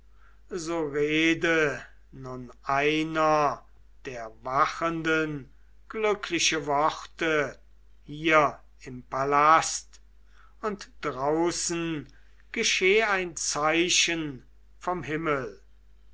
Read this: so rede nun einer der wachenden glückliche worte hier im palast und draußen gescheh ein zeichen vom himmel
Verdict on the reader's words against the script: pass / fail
pass